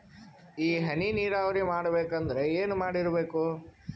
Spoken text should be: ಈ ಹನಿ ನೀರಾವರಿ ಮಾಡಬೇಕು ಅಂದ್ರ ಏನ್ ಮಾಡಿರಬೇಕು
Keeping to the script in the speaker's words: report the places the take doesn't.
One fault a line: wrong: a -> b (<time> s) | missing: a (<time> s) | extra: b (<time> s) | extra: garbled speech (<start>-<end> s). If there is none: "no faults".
no faults